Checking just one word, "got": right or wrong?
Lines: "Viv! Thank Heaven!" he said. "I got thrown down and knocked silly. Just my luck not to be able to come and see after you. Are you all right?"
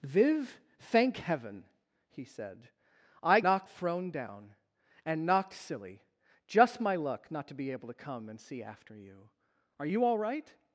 wrong